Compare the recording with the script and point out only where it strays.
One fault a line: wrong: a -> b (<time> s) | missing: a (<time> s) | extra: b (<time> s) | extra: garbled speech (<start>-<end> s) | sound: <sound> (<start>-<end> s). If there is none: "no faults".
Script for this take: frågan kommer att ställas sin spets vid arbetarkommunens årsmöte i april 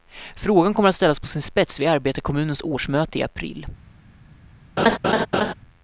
extra: på (1.2 s)
sound: laugh (4.8-5.5 s)